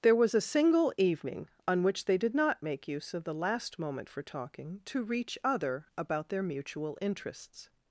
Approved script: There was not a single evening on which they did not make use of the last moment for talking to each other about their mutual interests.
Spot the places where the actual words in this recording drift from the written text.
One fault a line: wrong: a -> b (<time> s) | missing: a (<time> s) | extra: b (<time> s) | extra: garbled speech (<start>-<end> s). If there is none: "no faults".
missing: not (0.3 s)
wrong: each -> reach (5.0 s)